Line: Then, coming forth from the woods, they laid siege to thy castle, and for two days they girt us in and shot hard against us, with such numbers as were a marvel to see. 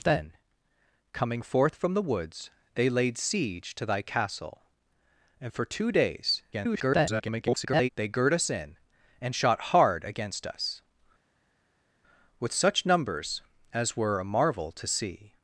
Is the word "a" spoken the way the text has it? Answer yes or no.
yes